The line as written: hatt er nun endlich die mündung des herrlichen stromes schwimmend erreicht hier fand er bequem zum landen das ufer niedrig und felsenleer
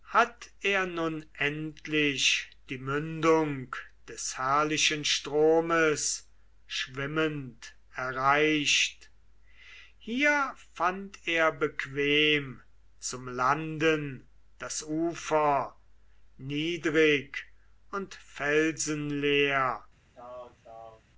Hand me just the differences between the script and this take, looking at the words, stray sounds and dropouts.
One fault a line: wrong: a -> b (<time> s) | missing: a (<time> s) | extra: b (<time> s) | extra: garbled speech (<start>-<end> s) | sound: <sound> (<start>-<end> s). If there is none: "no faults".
sound: throat clearing (20.1-21.0 s)